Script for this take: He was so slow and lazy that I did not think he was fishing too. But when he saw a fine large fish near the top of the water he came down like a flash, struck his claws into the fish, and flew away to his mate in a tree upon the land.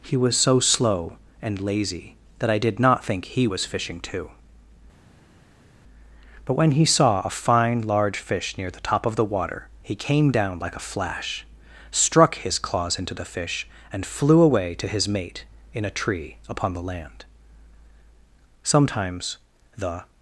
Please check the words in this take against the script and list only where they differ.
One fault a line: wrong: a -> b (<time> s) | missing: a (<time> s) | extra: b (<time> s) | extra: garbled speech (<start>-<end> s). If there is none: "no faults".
extra: Sometimes the (18.6 s)